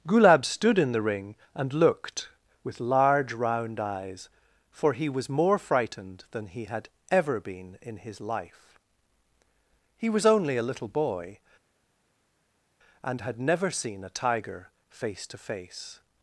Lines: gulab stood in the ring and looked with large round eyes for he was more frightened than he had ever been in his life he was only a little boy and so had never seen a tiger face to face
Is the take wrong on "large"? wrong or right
right